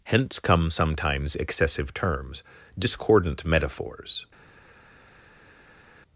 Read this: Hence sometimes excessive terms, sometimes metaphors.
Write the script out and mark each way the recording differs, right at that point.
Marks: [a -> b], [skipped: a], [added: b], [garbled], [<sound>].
Hence [added: come] sometimes excessive terms, [sometimes -> discordant] metaphors.